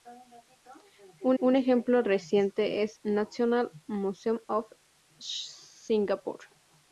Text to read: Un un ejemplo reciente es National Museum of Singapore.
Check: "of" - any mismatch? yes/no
no